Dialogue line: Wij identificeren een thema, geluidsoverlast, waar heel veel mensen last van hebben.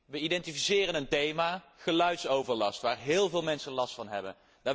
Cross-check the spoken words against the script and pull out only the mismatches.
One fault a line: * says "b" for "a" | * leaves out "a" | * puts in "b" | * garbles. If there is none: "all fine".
all fine